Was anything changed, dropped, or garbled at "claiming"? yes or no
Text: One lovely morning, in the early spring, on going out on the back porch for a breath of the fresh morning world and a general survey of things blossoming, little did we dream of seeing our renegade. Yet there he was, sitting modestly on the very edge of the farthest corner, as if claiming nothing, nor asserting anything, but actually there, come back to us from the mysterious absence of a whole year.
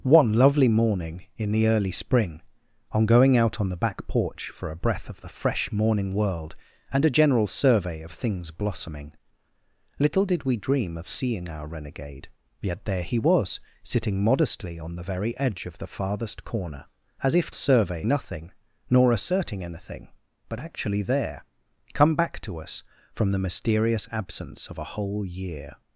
yes